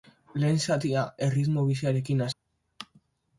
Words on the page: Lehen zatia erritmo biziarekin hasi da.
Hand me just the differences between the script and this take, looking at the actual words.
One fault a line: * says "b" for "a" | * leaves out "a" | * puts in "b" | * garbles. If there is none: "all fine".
* leaves out "hasi"